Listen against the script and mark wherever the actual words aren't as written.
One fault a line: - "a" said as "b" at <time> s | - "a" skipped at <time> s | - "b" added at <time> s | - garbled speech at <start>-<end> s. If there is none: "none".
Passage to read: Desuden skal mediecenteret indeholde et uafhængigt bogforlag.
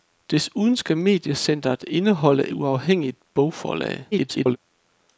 - "et" skipped at 2.5 s
- garbled speech at 4.1-4.6 s